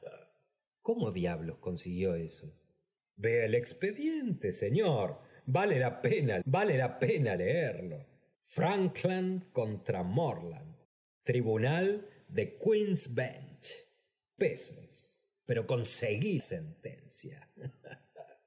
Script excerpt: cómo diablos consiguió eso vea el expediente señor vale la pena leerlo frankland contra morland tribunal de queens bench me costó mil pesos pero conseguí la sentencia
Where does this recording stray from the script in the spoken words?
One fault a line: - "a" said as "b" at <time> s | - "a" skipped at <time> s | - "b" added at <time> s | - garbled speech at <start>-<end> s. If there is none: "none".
- "vale la pena" added at 6.4 s
- "me costó mil" skipped at 13.8 s
- "la" skipped at 16.4 s